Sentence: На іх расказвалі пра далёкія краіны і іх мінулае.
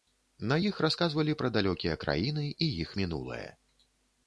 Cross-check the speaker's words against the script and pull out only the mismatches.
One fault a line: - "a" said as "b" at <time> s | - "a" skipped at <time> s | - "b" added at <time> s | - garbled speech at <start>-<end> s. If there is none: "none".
none